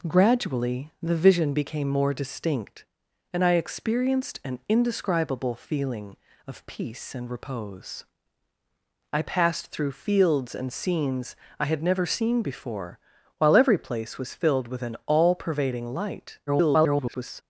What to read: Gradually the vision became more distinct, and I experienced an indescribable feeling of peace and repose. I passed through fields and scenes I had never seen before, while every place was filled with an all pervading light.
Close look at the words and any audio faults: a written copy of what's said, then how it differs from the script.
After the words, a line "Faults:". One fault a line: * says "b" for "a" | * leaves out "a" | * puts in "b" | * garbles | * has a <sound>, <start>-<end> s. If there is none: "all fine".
Gradually the vision became more distinct, and I experienced an indescribable feeling of peace and repose. I passed through fields and scenes I had never seen before, while every place was filled with an all pervading light. [garbled]
Faults:
* garbles